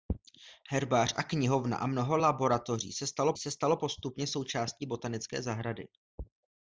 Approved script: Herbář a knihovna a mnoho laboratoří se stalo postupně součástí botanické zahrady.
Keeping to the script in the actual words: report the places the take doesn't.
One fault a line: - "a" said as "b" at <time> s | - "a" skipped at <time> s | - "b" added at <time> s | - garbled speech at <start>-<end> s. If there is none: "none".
- "se stalo" added at 3.4 s